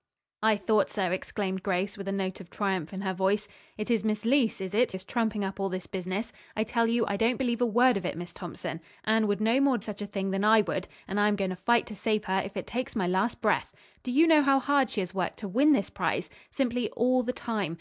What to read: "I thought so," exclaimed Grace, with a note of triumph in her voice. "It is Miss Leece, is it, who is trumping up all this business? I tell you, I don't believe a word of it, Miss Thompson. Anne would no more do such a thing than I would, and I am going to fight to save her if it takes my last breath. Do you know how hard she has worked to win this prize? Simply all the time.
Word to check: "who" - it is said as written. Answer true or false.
false